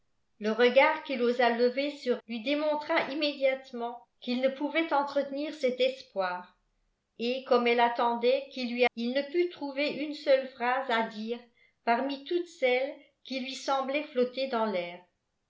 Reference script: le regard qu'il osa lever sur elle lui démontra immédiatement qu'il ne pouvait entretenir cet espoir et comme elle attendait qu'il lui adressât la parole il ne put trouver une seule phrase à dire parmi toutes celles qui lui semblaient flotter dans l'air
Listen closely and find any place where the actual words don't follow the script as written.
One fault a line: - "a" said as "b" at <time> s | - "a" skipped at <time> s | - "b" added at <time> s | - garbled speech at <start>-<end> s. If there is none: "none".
- "elle" skipped at 2.2 s
- "adressât la parole" skipped at 8.9 s